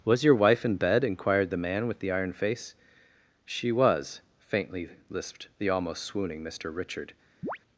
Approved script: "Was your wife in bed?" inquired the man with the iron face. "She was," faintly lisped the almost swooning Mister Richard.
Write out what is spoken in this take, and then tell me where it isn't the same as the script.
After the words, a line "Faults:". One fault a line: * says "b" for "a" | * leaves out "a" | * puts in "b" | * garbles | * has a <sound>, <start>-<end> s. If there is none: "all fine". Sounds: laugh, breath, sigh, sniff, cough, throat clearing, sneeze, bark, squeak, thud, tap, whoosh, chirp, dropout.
"Was your wife in bed?" inquired the man with the iron face. "She was," faintly lisped the almost swooning Mister Richard.
Faults:
* has a chirp, 7.4-7.6 s